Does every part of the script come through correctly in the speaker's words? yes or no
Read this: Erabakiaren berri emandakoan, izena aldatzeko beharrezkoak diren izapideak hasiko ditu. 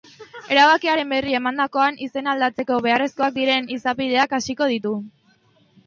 yes